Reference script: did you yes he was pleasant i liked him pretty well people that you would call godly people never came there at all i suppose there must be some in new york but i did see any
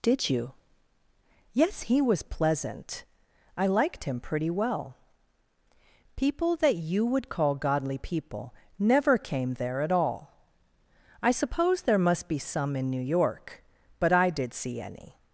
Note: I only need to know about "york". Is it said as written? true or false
true